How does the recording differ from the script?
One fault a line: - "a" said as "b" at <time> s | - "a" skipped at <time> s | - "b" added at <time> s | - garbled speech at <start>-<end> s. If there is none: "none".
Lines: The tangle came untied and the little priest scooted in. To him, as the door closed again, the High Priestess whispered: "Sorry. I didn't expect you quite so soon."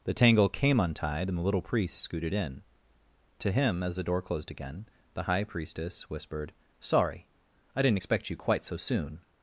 none